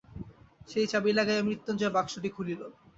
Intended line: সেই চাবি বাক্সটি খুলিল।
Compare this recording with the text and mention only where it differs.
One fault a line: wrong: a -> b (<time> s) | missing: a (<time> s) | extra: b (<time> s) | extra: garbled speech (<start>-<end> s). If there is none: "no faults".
extra: লাগাইয়া মৃত্যুঞ্জয় (1.1 s)